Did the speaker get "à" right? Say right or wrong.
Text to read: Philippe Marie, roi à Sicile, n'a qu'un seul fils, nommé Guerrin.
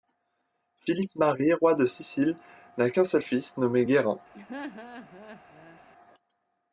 wrong